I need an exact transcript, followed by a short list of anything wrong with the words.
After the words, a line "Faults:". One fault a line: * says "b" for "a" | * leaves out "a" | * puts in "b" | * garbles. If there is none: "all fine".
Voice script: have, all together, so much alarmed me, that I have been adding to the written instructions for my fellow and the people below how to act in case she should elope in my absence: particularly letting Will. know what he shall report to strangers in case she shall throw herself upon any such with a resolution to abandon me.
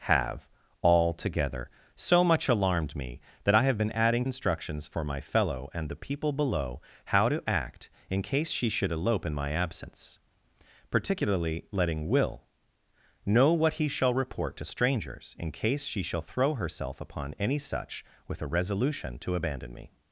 have, all together, so much alarmed me, that I have been adding instructions for my fellow and the people below how to act in case she should elope in my absence: particularly letting Will. know what he shall report to strangers in case she shall throw herself upon any such with a resolution to abandon me.
Faults:
* leaves out "to the written"